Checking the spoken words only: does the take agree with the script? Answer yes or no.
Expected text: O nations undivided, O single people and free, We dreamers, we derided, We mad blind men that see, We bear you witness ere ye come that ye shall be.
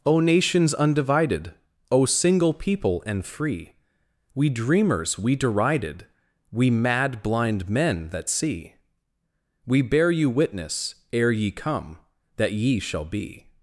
yes